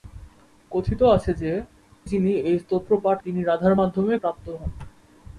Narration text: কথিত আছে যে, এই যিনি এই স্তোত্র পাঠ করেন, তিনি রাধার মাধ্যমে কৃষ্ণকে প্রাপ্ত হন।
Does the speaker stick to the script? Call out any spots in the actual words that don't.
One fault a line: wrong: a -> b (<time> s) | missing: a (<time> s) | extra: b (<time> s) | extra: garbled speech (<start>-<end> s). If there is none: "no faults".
missing: এই (1.5 s)
missing: করেন (3.2 s)
missing: কৃষ্ণকে (4.1 s)